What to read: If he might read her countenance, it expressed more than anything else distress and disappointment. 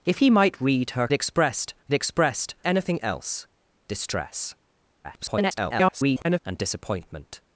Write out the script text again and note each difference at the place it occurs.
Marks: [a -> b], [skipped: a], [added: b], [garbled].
If he might read her [countenance, -> expressed] it expressed [skipped: more than] anything else distress [garbled] and disappointment.